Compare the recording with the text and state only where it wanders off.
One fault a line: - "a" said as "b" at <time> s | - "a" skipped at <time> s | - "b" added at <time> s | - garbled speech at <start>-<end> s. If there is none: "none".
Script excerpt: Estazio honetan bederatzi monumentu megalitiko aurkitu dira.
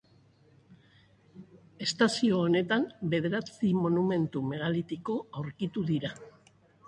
none